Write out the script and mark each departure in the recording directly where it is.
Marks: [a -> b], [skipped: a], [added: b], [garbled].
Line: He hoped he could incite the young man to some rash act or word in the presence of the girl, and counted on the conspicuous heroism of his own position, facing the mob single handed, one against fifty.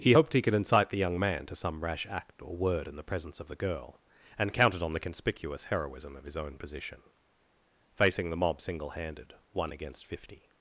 He hoped he could incite the young man to some rash act or word in the presence of the girl, and counted on the conspicuous heroism of his own position, facing the mob single handed, one against fifty.